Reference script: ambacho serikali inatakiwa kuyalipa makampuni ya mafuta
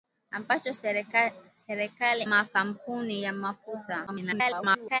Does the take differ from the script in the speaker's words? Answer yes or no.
yes